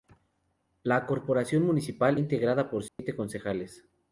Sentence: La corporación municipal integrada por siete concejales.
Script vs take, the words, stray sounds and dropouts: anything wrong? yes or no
yes